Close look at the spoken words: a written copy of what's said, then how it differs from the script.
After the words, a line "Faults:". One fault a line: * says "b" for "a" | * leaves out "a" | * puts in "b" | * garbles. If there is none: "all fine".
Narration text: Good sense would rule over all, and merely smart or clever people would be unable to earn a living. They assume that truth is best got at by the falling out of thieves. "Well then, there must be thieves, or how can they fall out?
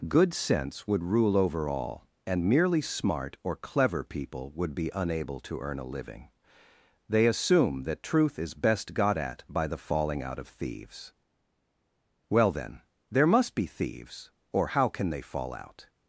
Good sense would rule over all, and merely smart or clever people would be unable to earn a living. They assume that truth is best got at by the falling out of thieves. "Well then, there must be thieves, or how can they fall out?
Faults:
all fine